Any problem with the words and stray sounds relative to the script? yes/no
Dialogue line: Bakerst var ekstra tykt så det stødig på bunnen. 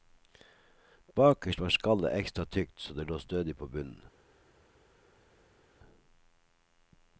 yes